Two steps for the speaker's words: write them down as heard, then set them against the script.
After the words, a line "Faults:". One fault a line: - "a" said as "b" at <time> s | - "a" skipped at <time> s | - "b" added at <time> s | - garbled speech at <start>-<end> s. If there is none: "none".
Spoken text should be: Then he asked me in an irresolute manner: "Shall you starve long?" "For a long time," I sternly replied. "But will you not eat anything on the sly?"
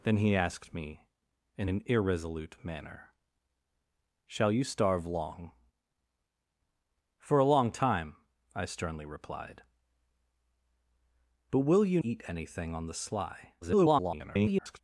Then he asked me in an irresolute manner: "Shall you starve long?" "For a long time," I sternly replied. "But will you eat anything on the sly?" [garbled]
Faults:
- "not" skipped at 12.0 s
- garbled speech at 13.6-14.8 s